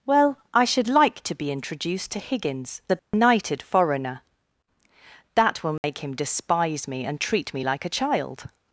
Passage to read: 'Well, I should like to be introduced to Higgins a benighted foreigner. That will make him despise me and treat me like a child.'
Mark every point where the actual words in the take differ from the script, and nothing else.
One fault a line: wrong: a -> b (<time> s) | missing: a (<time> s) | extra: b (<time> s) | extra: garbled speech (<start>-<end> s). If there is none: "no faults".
no faults